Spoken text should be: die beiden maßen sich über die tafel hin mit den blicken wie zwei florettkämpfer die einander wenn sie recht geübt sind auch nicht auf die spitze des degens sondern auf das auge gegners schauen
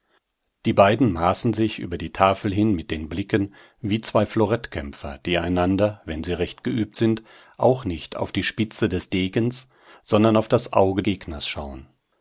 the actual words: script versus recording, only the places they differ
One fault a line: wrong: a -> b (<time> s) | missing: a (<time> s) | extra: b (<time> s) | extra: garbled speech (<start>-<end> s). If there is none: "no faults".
no faults